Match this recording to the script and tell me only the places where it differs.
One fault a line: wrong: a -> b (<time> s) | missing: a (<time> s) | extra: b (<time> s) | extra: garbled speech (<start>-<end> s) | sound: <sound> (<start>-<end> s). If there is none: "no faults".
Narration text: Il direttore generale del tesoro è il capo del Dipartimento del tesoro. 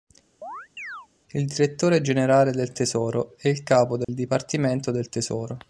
sound: chirp (0.4-1.1 s)
sound: dropout (4.0-4.1 s)